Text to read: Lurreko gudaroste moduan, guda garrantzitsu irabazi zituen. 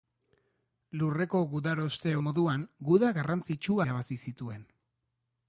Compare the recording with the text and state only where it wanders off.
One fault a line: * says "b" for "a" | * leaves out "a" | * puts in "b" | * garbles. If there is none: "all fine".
all fine